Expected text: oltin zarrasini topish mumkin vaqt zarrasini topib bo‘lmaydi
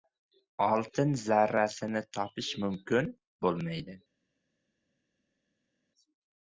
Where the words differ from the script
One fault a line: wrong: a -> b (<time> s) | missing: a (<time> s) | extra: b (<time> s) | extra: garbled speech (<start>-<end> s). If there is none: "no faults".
missing: vaqt zarrasini topib (3.1 s)